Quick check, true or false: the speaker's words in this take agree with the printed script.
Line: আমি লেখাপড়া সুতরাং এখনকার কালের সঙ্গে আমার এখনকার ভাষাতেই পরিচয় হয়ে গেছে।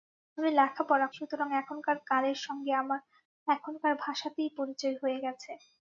true